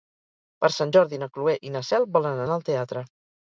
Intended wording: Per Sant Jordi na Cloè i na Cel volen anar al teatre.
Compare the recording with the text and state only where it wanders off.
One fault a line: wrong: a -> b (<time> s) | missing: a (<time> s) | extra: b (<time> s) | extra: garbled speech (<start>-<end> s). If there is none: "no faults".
no faults